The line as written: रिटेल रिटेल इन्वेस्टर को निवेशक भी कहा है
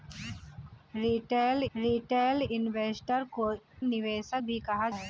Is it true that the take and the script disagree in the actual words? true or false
false